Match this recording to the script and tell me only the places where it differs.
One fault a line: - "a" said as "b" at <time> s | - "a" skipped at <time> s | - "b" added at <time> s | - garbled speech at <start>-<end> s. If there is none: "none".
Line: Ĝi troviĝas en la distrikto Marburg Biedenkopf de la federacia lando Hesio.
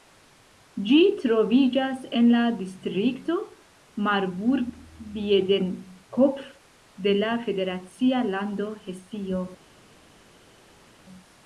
none